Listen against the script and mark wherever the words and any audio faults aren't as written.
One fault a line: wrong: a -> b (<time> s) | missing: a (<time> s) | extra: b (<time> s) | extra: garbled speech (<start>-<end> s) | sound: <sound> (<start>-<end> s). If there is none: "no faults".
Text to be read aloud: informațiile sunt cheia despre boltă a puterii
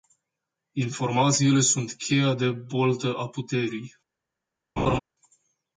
wrong: despre -> de (2.3 s)
sound: laugh (4.8-5.0 s)